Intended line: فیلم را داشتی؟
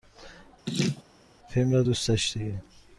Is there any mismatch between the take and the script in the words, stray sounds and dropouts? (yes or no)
yes